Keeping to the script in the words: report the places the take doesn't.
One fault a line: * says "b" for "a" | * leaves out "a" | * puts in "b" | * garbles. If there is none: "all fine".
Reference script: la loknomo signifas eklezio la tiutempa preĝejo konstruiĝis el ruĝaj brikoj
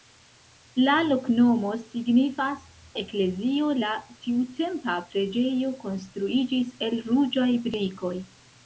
all fine